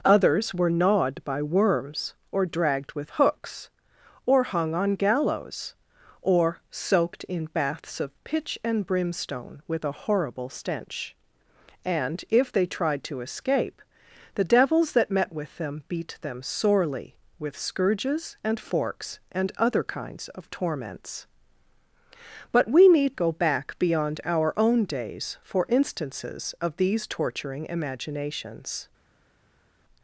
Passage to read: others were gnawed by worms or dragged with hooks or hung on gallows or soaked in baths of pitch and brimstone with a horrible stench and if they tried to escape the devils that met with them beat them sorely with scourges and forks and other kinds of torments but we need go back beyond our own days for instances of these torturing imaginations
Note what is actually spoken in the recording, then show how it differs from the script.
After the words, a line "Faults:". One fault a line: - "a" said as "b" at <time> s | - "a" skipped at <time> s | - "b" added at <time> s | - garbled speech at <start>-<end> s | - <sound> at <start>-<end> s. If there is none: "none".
others were gnawed by worms or dragged with hooks or hung on gallows or soaked in baths of pitch and brimstone with a horrible stench and if they tried to escape the devils that met with them beat them sorely with scourges and forks and other kinds of torments but we need go back beyond our own days for instances of these torturing imaginations
Faults:
none